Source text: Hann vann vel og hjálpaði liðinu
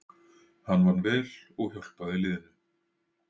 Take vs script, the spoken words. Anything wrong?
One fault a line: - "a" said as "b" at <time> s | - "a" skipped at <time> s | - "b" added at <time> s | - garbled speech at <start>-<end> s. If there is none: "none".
none